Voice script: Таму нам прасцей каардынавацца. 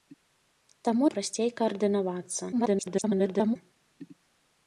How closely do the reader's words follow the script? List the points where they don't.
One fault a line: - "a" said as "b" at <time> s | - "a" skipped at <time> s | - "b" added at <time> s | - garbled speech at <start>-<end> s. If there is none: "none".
- "нам" skipped at 1.1 s
- garbled speech at 2.5-3.6 s